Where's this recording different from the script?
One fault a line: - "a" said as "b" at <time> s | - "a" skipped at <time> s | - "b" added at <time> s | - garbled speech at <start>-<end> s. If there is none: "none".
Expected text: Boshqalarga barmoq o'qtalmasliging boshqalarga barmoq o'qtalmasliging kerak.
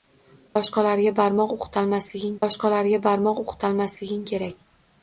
none